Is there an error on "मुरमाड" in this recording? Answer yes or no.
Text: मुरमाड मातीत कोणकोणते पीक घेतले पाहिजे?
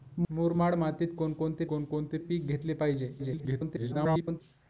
no